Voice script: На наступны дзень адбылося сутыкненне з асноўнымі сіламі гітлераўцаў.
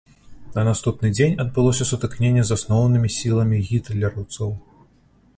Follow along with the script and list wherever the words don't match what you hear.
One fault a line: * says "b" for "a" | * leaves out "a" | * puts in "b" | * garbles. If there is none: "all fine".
all fine